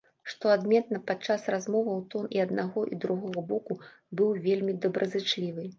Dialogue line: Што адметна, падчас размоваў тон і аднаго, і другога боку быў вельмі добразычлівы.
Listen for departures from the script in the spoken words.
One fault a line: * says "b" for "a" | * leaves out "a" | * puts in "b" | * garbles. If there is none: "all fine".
all fine